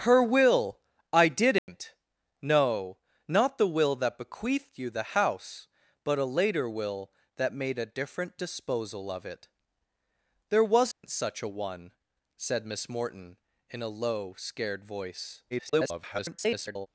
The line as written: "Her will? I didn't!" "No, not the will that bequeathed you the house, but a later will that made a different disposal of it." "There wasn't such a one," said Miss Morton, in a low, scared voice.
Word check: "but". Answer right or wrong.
right